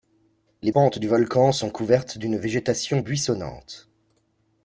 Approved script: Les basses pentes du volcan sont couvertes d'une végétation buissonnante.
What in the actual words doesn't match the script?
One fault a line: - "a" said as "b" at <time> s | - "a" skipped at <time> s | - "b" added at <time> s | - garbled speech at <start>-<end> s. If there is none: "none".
- "basses" skipped at 0.7 s